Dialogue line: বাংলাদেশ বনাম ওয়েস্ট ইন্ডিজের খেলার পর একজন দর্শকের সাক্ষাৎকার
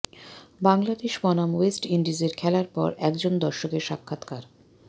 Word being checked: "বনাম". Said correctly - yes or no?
yes